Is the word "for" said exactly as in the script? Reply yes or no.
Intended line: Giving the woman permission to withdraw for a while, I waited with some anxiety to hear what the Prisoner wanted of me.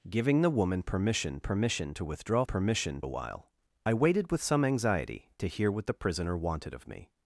no